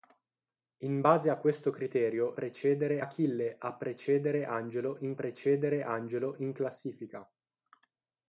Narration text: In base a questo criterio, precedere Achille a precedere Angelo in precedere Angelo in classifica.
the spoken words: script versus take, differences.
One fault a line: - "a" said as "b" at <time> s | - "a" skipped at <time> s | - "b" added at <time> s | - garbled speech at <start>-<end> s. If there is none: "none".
none